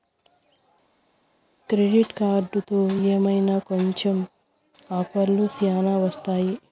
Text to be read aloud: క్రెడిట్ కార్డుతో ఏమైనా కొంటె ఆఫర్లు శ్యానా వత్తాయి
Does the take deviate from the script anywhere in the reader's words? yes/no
no